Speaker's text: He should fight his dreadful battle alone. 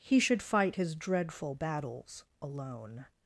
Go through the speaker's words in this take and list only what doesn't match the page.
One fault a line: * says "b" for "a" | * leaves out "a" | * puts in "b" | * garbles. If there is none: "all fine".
* says "battles" for "battle"